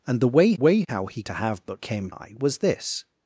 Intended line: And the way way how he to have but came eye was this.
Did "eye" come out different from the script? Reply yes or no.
no